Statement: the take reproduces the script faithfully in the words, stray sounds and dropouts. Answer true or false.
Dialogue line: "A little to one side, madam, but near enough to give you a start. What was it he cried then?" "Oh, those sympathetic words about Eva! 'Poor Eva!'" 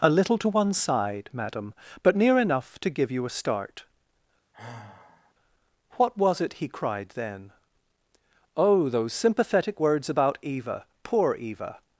false